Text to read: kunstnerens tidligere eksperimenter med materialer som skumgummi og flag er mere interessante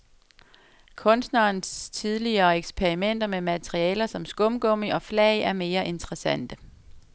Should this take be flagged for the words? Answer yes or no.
no